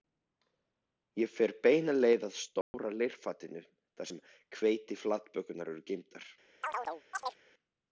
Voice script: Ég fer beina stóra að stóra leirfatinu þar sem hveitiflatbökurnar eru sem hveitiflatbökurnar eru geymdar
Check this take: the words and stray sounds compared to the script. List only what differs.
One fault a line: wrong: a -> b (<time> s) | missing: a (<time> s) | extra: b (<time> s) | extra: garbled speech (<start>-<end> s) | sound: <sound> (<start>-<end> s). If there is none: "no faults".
wrong: stóra -> leið (2.0 s)
sound: dropout (2.6-2.7 s)
missing: sem hveitiflatbökurnar eru (5.8 s)
sound: chirp (6.6-7.4 s)